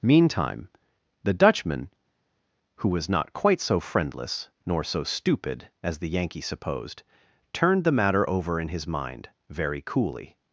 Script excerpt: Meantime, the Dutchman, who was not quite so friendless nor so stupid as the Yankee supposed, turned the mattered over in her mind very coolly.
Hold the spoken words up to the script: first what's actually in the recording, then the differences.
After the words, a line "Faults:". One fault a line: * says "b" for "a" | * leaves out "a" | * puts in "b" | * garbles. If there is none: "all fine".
Meantime, the Dutchman, who was not quite so friendless nor so stupid as the Yankee supposed, turned the matter over in his mind very coolly.
Faults:
* says "matter" for "mattered"
* says "his" for "her"